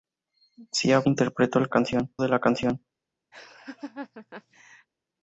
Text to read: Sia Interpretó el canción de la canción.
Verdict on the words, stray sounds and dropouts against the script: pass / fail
fail